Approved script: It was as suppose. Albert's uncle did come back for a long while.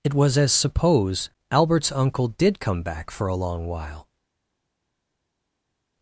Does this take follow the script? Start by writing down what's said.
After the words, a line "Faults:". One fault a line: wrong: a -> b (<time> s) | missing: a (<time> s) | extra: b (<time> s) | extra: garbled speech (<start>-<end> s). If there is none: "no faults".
It was as suppose. Albert's uncle did come back for a long while.
Faults:
no faults